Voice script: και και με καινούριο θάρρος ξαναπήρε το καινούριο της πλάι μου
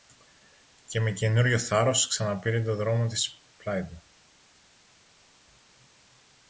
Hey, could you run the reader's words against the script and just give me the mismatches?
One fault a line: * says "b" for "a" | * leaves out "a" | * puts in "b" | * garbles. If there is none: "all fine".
* leaves out "και"
* says "δρόμο" for "καινούριο"
* says "του" for "μου"